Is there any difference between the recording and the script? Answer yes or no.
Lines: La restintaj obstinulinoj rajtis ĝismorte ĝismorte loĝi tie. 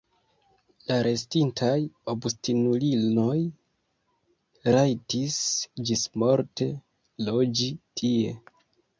yes